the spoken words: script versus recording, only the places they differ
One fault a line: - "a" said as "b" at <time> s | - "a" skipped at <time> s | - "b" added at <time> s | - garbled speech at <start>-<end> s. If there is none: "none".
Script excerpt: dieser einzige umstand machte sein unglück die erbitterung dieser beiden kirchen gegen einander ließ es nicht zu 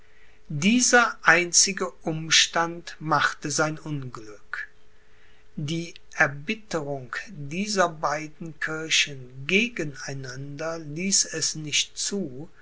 none